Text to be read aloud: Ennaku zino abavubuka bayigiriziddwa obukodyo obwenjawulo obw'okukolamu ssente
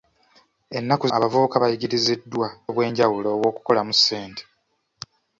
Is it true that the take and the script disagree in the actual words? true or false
true